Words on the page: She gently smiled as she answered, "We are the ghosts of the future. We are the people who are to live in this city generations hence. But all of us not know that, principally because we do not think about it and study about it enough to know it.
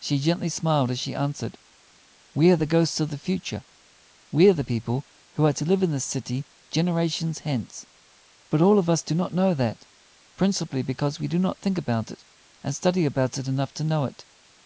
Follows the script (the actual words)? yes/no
no